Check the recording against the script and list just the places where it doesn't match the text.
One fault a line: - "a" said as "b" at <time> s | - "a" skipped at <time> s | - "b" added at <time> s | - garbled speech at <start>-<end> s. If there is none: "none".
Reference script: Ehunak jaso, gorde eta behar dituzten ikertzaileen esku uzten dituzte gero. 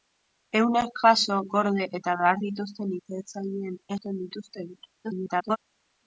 - "esku" skipped at 3.8 s
- garbled speech at 5.0-5.6 s